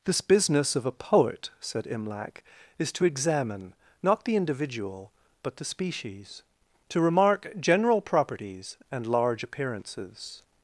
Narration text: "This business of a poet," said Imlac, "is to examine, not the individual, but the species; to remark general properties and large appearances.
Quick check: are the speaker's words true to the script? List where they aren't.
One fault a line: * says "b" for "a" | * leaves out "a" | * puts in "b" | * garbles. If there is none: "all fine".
all fine